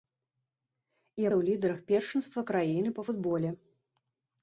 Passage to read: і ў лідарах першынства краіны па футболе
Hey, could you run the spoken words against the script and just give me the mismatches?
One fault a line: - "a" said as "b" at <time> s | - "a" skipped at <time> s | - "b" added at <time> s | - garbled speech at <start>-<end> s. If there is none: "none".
none